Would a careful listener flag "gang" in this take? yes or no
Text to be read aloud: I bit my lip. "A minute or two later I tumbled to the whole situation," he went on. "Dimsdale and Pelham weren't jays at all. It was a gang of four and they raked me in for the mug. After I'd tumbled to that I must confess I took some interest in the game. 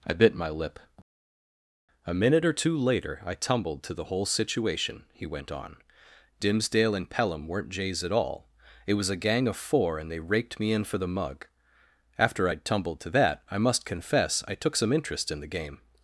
no